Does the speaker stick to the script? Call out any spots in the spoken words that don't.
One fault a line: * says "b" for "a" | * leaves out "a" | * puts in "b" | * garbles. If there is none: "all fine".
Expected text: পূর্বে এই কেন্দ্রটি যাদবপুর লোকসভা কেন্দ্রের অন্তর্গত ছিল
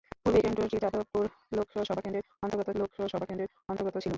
* leaves out "এই"
* puts in "লোকসভা কেন্দ্রের অন্তর্গত"